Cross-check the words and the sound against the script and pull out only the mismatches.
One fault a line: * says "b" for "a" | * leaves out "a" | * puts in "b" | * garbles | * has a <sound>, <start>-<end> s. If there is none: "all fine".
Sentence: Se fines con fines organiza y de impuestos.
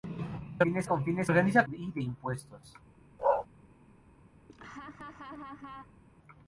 * has a bark, 3.2-3.5 s
* has a laugh, 4.5-6.0 s